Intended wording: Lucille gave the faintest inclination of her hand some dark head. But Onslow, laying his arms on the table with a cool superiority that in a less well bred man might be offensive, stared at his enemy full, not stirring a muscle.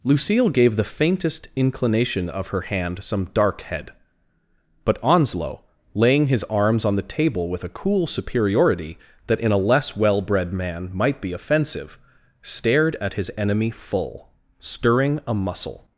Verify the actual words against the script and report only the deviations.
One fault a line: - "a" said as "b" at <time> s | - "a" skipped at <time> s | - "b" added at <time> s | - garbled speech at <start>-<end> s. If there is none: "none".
- "not" skipped at 14.3 s